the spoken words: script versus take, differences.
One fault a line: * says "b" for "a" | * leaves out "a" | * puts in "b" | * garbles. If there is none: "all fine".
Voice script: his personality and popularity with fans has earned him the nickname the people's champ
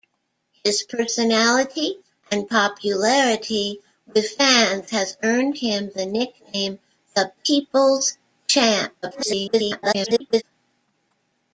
* garbles